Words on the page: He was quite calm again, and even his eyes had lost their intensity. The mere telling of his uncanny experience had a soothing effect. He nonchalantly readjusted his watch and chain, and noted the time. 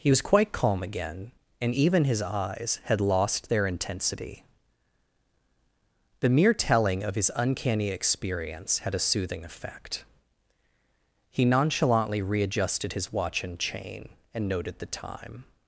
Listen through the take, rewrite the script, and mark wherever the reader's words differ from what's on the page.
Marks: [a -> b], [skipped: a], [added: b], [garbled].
He was quite calm again, and even his eyes had lost their intensity. The mere telling of his uncanny experience had a soothing effect. He nonchalantly readjusted his watch and chain, and noted the time.